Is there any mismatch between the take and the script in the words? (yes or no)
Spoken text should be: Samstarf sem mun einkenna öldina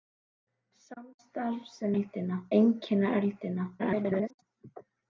yes